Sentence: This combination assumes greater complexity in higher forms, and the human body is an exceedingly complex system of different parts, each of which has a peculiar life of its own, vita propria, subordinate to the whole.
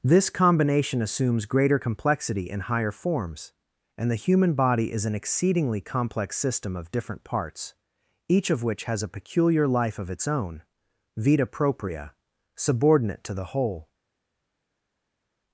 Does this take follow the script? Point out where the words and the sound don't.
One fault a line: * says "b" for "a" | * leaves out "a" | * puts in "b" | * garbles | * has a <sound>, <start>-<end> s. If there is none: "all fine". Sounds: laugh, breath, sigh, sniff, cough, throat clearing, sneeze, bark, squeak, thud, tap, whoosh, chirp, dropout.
all fine